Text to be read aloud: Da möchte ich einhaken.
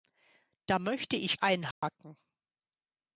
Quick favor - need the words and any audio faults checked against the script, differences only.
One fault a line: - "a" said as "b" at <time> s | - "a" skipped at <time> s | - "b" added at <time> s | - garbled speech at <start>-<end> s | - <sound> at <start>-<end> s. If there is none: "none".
- dropout at 1.7-1.8 s